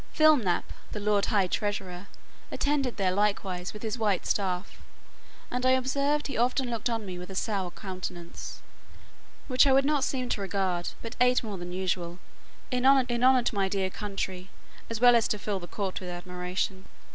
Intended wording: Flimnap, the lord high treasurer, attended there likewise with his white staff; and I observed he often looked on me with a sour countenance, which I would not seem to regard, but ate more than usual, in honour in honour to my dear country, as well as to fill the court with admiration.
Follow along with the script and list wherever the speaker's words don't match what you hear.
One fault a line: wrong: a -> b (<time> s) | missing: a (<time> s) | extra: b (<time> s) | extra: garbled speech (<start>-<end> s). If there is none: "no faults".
no faults